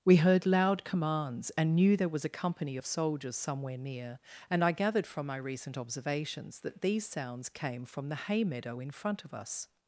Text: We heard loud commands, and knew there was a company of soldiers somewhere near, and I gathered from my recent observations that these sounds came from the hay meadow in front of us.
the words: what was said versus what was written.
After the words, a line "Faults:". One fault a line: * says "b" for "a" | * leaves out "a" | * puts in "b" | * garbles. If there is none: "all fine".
We heard loud commands, and knew there was a company of soldiers somewhere near, and I gathered from my recent observations that these sounds came from the hay meadow in front of us.
Faults:
all fine